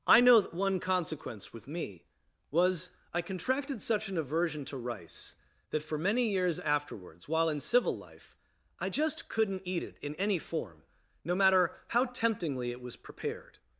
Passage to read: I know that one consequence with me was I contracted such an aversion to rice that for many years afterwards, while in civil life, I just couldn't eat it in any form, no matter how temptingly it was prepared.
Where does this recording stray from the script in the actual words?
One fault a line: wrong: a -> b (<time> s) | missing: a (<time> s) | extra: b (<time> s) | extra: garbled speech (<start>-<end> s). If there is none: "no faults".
no faults